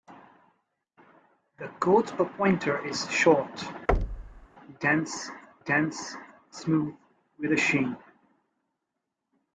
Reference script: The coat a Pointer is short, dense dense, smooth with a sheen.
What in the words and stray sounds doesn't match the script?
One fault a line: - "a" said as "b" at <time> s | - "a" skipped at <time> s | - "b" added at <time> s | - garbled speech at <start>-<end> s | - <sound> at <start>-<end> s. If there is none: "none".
- thud at 3.9-4.5 s